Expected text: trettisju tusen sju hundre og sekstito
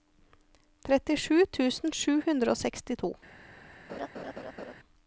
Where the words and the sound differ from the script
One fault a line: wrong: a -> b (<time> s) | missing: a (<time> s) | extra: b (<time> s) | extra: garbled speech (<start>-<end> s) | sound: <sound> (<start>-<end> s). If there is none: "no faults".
sound: laugh (3.9-4.7 s)